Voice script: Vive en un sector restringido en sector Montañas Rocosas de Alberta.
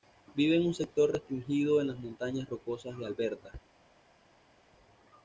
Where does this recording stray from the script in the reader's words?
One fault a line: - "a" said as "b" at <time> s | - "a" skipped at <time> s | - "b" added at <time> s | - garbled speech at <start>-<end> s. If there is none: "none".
- "sector" said as "las" at 1.9 s